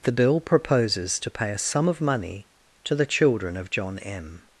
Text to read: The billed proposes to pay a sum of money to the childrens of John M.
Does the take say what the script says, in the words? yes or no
no